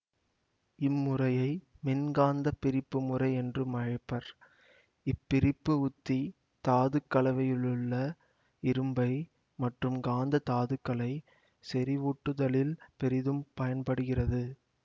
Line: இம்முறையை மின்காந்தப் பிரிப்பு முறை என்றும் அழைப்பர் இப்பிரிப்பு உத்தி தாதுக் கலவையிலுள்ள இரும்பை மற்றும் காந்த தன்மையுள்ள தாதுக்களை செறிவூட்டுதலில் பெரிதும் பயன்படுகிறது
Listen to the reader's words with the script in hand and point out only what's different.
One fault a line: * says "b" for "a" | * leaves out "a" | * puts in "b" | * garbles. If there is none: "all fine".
* leaves out "தன்மையுள்ள"